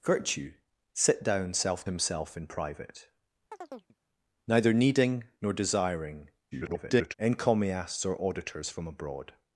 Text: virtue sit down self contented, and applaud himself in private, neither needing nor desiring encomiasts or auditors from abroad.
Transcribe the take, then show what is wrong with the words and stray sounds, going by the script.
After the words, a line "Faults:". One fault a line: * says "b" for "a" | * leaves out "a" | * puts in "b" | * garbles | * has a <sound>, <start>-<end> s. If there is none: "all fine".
virtue sit down self himself in private, neither needing nor desiring [garbled] encomiasts or auditors from abroad.
Faults:
* leaves out "contented and applaud"
* has a chirp, 3.5-4.0 s
* garbles